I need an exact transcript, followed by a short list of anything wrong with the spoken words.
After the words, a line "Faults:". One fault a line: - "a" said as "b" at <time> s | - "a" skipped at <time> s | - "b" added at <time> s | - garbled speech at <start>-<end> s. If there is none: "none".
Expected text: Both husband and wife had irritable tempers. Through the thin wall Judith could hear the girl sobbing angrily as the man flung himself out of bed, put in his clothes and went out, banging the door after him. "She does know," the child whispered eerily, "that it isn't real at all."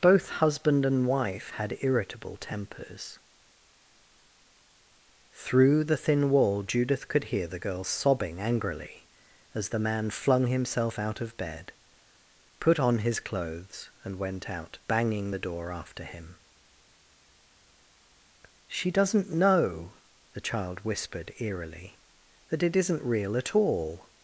Both husband and wife had irritable tempers. Through the thin wall Judith could hear the girl sobbing angrily as the man flung himself out of bed, put on his clothes and went out, banging the door after him. "She doesn't know," the child whispered eerily, "that it isn't real at all."
Faults:
- "in" said as "on" at 12.8 s
- "does" said as "doesn't" at 18.9 s